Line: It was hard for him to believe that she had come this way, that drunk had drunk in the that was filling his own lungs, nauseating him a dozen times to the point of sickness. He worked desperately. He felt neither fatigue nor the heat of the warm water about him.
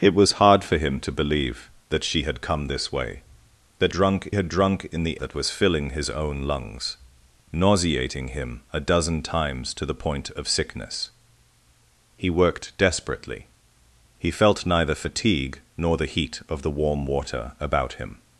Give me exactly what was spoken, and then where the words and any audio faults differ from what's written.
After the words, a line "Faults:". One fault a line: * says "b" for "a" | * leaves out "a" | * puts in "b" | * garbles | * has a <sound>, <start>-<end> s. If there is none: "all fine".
It was hard for him to believe that she had come this way, that drunk had drunk in the that was filling his own lungs, nauseating him a dozen times to the point of sickness. He worked desperately. He felt neither fatigue nor the heat of the warm water about him.
Faults:
all fine